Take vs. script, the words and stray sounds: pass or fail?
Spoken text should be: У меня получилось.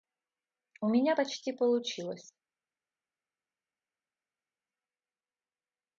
fail